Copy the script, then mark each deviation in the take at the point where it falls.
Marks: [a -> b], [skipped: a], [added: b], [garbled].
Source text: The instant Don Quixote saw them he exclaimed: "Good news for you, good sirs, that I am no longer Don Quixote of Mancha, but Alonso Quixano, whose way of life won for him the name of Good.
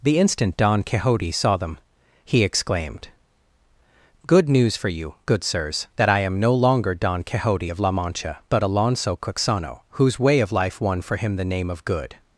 The instant Don Quixote saw them he exclaimed: "Good news for you, good sirs, that I am no longer Don Quixote of [added: La] Mancha, but Alonso Quixano, whose way of life won for him the name of Good.